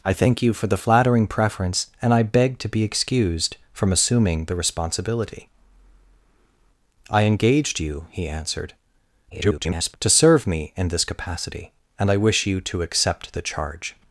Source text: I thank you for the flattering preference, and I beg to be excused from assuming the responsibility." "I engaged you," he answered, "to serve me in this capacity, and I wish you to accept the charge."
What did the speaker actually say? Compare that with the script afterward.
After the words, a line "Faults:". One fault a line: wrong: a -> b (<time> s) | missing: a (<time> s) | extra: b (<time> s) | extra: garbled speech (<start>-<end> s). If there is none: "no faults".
I thank you for the flattering preference, and I beg to be excused from assuming the responsibility." "I engaged you," he answered, [garbled] "to serve me in this capacity, and I wish you to accept the charge."
Faults:
extra: garbled speech (9.3-10.0 s)